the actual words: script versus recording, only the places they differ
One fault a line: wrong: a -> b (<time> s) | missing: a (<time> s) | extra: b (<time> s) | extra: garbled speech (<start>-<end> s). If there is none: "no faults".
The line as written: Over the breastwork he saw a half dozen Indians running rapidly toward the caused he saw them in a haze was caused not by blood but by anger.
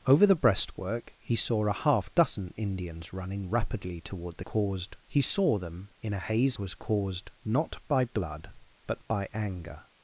no faults